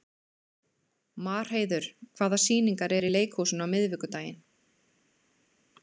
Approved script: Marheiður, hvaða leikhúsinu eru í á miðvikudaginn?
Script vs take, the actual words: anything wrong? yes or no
yes